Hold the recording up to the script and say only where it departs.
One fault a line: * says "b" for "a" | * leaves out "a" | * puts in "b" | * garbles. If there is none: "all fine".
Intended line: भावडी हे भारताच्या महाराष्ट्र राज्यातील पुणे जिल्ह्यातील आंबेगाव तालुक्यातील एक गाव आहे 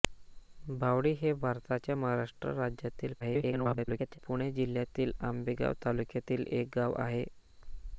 * garbles